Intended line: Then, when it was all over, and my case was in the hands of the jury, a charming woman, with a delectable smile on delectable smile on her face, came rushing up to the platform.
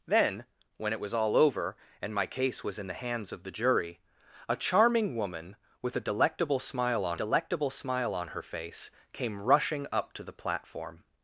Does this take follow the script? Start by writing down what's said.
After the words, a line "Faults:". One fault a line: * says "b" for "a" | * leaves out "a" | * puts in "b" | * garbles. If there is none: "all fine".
Then, when it was all over, and my case was in the hands of the jury, a charming woman, with a delectable smile on delectable smile on her face, came rushing up to the platform.
Faults:
all fine